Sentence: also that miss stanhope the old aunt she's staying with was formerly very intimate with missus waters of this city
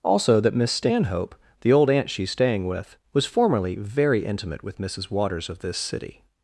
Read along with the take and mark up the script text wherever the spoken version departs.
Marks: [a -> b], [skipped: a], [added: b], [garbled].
also that miss stanhope the old aunt she's staying with was formerly very intimate with missus waters of this city